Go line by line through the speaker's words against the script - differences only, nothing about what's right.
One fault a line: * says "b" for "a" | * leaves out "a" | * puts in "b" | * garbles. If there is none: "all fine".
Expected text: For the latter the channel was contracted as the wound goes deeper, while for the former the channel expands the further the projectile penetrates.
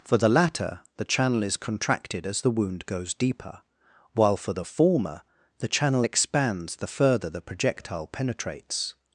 * says "is" for "was"